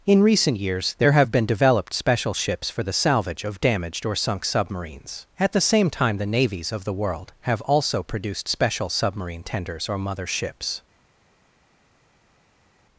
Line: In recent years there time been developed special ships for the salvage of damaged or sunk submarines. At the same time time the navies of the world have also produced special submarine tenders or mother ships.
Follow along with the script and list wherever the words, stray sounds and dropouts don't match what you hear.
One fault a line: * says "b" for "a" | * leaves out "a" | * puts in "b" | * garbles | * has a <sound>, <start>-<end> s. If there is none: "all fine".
* says "have" for "time"
* leaves out "time"